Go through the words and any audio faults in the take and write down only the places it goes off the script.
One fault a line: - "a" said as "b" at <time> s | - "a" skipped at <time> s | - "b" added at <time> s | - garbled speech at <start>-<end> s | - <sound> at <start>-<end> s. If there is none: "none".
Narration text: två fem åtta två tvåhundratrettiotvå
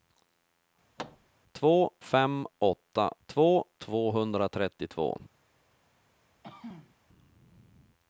- thud at 1.0-1.3 s
- throat clearing at 6.4-7.0 s